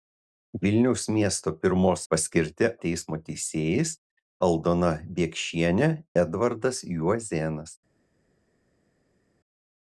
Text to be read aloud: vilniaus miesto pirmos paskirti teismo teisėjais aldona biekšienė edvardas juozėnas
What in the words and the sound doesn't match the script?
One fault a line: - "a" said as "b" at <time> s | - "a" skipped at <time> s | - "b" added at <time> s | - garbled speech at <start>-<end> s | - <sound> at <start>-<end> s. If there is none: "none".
none